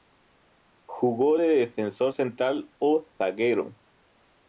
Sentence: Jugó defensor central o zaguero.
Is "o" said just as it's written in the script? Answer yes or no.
yes